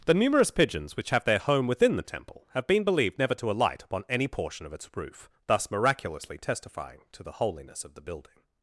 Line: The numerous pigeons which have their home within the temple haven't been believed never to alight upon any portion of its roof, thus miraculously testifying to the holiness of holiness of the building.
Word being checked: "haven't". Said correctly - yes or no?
no